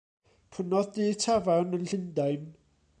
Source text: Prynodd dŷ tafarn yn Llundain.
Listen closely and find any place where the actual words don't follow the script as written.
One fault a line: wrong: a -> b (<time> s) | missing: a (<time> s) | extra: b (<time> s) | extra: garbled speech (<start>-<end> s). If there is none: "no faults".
no faults